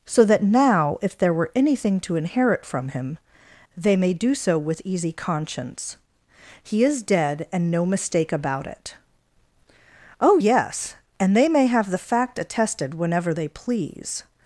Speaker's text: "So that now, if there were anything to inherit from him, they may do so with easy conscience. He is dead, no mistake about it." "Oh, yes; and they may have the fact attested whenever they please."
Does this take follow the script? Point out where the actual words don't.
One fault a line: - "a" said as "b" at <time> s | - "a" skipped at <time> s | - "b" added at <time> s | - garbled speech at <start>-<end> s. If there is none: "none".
- "and" added at 7.5 s